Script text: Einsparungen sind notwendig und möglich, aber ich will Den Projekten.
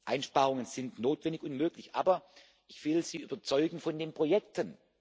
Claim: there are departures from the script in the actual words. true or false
true